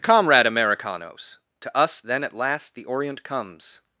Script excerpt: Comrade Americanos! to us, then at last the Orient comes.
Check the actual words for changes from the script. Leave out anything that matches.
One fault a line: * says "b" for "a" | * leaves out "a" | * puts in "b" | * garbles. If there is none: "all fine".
all fine